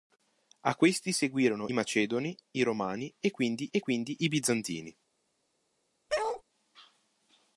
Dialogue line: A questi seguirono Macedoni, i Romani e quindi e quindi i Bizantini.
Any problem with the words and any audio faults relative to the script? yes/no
yes